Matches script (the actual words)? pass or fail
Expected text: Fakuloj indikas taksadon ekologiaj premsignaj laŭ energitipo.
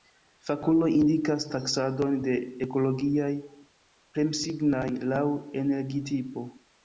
fail